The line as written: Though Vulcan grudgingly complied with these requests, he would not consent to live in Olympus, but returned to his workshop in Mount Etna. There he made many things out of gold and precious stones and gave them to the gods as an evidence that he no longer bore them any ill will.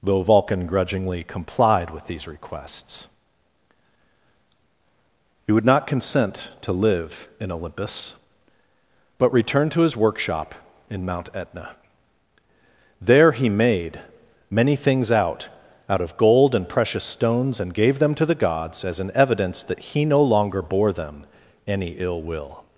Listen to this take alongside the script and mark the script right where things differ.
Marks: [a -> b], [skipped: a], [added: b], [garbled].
Though Vulcan grudgingly complied with these requests, he would not consent to live in Olympus, but returned to his workshop in Mount Etna. There he made many things out [added: out] of gold and precious stones and gave them to the gods as an evidence that he no longer bore them any ill will.